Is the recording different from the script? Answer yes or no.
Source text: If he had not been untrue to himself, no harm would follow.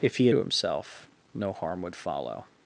yes